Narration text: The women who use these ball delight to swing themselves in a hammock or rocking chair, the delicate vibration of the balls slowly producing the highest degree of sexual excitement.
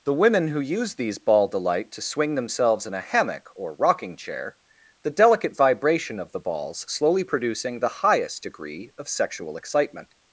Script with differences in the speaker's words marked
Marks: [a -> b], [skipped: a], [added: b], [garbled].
The women who use these ball delight to swing themselves in a hammock or rocking chair, the delicate vibration of the balls slowly producing the highest degree of sexual excitement.